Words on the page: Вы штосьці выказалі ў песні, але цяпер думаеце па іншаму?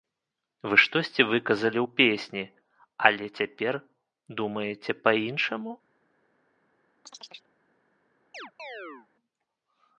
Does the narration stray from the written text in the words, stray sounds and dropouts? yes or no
yes